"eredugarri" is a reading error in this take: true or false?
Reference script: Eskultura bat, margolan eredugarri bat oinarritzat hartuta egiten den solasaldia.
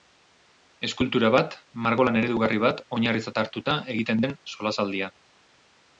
false